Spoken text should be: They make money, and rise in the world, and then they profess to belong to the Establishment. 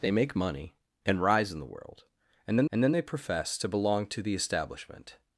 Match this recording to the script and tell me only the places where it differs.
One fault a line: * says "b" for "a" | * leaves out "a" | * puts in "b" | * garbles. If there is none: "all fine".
* puts in "and then"